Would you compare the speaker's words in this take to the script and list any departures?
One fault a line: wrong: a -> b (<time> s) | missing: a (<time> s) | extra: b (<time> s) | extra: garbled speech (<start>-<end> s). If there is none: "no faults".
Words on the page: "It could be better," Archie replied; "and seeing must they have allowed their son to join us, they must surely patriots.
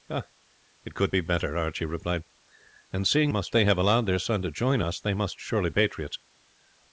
no faults